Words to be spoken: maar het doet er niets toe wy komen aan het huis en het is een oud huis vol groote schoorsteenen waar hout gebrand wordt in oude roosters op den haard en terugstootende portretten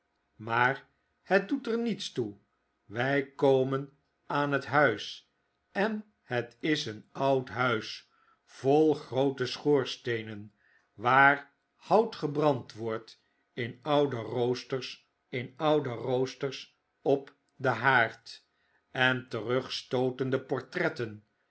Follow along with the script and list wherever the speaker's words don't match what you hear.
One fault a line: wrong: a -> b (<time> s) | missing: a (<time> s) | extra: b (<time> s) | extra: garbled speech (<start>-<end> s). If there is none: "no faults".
extra: in oude roosters (15.3 s)